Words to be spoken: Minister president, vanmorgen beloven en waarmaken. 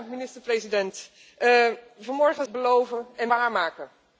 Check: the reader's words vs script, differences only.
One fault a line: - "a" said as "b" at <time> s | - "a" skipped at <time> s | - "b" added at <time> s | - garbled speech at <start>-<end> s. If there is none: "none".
none